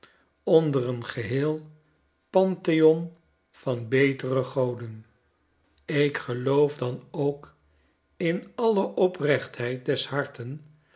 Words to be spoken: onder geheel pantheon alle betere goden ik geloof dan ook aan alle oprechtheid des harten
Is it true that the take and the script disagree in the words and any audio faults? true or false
true